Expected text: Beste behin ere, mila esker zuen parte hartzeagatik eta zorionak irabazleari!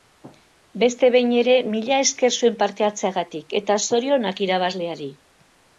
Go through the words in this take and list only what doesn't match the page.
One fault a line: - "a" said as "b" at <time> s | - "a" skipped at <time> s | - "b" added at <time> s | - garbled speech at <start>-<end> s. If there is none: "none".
none